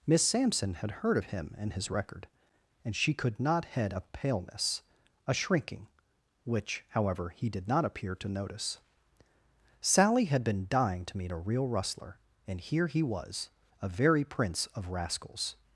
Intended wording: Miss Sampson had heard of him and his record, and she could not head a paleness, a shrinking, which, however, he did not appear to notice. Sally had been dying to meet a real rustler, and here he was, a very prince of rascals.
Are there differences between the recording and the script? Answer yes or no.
no